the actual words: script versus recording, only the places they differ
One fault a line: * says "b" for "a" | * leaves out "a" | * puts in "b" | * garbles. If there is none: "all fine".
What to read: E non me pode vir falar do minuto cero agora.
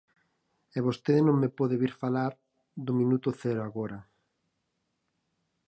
* puts in "vostede"